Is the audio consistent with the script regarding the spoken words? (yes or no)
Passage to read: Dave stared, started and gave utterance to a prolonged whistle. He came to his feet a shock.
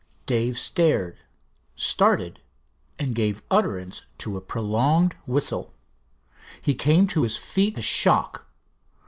yes